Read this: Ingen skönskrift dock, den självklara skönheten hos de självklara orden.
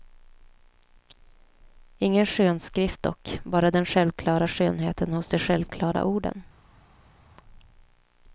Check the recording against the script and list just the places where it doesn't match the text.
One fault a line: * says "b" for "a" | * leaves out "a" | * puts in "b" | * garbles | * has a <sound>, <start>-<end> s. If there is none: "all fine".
* puts in "bara"